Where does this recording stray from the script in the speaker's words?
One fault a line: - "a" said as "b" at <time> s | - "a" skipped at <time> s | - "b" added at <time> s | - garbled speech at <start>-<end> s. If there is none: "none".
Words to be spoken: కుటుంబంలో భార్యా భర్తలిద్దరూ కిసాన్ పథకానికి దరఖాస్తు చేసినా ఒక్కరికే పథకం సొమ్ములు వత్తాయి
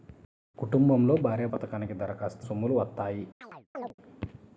- "భర్తలిద్దరూ కిసాన్" skipped at 1.5 s
- "చేసినా ఒక్కరికే పథకం" skipped at 2.4 s